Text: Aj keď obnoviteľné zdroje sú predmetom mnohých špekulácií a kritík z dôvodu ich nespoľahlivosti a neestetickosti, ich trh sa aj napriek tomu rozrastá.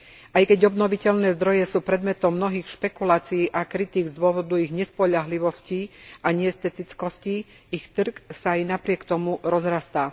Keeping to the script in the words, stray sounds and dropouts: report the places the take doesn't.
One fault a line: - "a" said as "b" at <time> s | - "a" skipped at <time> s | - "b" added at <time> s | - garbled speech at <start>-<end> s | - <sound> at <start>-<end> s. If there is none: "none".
none